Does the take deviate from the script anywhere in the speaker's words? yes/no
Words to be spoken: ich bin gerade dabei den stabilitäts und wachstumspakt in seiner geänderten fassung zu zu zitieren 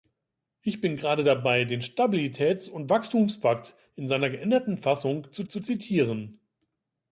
no